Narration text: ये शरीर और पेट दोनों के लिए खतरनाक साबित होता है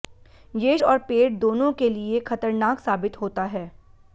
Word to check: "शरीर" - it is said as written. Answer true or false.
false